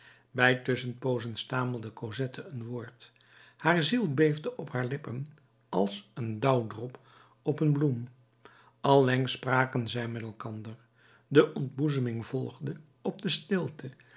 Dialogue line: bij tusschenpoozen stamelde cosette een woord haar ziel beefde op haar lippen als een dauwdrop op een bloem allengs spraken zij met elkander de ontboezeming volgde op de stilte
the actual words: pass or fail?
pass